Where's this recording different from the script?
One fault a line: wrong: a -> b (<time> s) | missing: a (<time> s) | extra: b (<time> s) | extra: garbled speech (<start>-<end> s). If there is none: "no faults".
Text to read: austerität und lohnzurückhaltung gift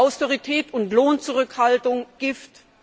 no faults